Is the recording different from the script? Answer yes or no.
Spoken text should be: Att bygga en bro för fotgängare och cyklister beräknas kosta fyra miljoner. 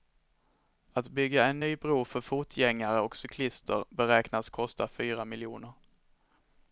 yes